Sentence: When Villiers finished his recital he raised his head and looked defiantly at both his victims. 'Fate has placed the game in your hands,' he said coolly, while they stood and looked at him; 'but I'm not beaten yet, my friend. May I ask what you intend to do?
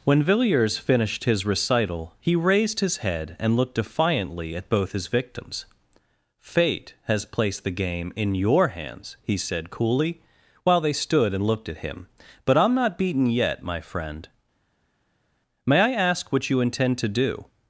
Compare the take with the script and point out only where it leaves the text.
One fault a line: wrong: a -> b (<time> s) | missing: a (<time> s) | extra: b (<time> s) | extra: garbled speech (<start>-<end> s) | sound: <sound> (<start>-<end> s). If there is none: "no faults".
no faults